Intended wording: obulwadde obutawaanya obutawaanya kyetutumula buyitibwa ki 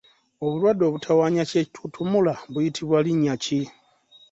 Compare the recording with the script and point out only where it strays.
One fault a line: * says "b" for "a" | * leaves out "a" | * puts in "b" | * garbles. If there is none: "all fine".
* leaves out "obutawaanya"
* puts in "linnya"